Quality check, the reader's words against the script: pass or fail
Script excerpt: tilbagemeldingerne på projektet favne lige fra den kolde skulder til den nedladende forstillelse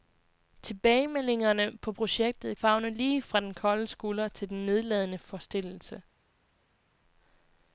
pass